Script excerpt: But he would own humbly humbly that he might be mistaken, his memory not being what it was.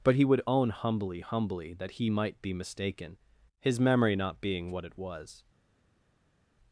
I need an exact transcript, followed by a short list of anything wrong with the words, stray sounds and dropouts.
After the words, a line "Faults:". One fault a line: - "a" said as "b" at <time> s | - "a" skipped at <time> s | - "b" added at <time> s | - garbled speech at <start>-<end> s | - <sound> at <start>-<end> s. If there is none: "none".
But he would own humbly humbly that he might be mistaken, his memory not being what it was.
Faults:
none